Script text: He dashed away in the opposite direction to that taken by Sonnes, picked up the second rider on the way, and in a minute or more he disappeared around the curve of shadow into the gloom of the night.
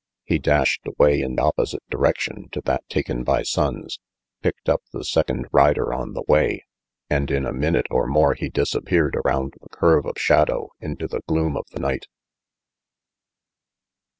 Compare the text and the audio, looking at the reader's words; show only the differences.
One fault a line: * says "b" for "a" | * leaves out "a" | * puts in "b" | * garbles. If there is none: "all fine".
* leaves out "the"